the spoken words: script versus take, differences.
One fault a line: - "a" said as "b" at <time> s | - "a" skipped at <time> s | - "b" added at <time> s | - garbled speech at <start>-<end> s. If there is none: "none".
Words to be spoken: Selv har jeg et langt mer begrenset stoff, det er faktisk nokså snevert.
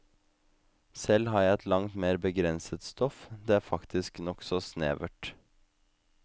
none